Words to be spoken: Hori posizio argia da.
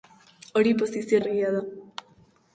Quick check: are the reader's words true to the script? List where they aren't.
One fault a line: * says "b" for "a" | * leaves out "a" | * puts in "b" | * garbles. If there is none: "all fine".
all fine